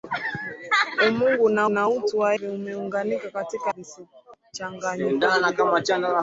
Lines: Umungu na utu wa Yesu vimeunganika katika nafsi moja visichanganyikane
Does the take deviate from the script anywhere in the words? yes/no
yes